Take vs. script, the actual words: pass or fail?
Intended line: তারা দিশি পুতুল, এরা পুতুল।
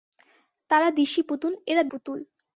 pass